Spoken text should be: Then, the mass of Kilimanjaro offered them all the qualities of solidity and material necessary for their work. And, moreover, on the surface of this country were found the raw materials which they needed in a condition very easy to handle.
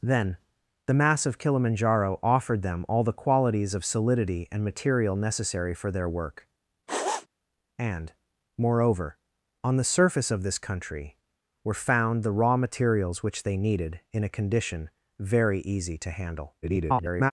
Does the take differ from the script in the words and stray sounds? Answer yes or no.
yes